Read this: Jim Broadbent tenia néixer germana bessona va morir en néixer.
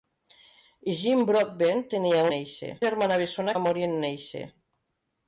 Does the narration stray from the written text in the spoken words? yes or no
no